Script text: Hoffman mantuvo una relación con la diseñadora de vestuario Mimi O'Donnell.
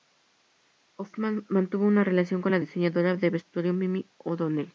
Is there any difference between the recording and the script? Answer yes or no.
no